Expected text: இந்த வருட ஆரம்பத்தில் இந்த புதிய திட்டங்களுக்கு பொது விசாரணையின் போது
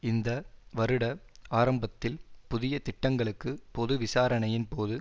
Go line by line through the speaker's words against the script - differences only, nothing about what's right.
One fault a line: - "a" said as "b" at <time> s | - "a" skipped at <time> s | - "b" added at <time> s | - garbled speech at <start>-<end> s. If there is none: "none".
- "இந்த" skipped at 2.2 s